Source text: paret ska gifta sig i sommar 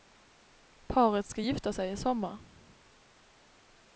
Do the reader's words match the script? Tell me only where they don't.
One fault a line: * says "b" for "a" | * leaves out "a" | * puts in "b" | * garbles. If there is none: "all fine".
all fine